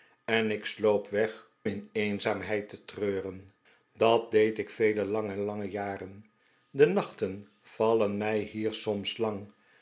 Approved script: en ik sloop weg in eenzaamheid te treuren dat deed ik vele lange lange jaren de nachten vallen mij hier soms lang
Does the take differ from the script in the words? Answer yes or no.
no